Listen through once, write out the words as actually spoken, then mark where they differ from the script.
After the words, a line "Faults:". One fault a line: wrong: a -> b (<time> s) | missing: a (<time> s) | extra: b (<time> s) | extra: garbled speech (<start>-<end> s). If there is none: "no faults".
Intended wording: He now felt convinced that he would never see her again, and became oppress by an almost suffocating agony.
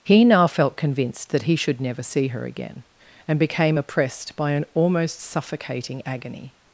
He now felt convinced that he should never see her again, and became oppressed by an almost suffocating agony.
Faults:
wrong: would -> should (1.6 s)
wrong: oppress -> oppressed (3.8 s)